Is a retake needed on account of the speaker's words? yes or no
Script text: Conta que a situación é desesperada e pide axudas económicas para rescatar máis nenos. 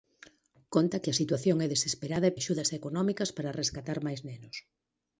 yes